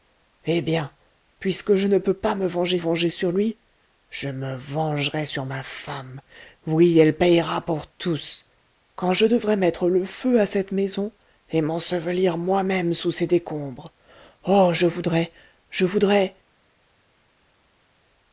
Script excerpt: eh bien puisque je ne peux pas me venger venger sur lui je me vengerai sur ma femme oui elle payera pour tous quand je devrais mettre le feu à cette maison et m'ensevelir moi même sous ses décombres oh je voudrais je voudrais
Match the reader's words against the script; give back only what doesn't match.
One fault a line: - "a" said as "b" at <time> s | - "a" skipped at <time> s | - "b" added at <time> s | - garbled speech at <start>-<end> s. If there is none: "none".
none